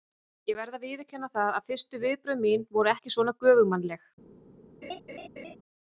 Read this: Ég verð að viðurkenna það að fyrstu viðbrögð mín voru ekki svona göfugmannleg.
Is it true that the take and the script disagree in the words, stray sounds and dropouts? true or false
true